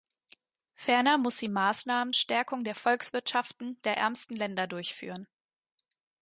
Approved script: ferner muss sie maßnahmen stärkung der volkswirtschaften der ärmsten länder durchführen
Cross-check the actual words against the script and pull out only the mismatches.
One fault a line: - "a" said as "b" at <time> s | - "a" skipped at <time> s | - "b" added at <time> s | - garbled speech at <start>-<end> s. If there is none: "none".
none